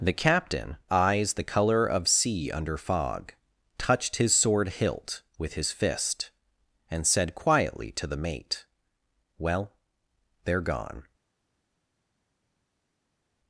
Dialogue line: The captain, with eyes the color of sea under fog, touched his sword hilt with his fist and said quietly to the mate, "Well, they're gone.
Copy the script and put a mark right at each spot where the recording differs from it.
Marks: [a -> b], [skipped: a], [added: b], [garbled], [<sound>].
The captain, [skipped: with] eyes the color of sea under fog, touched his sword hilt with his fist and said quietly to the mate, "Well, they're gone.